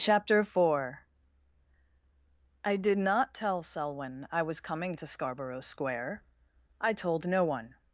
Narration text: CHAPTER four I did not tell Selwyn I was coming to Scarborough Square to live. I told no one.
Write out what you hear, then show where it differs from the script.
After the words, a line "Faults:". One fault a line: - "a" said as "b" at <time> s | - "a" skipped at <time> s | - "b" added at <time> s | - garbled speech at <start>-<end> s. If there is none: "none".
CHAPTER four I did not tell Selwyn I was coming to Scarborough Square. I told no one.
Faults:
- "to live" skipped at 6.2 s